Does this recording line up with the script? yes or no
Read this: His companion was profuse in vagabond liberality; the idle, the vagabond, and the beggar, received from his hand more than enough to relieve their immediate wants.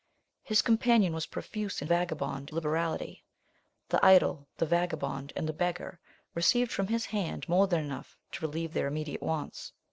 yes